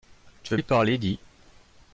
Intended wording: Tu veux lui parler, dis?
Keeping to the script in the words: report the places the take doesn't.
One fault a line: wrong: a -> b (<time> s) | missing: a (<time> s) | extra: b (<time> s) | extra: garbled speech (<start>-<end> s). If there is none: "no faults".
no faults